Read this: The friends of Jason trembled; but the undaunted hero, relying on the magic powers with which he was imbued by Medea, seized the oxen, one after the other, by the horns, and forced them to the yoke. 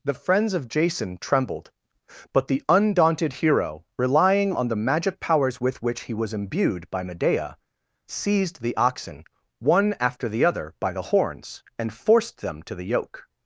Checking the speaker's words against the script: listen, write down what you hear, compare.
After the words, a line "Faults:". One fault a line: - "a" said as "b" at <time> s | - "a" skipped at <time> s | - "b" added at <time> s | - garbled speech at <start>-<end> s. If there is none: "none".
The friends of Jason trembled; but the undaunted hero, relying on the magic powers with which he was imbued by Medea, seized the oxen, one after the other, by the horns, and forced them to the yoke.
Faults:
none